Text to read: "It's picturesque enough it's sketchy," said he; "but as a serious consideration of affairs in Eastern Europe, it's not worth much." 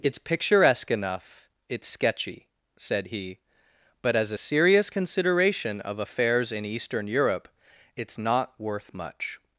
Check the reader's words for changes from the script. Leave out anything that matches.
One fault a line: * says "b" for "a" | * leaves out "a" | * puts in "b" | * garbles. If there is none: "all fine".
all fine